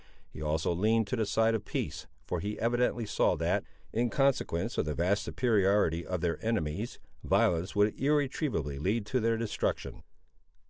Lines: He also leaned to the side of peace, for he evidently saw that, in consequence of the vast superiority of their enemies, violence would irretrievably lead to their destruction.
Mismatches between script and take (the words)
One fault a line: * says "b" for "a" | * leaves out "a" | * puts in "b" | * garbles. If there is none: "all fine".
all fine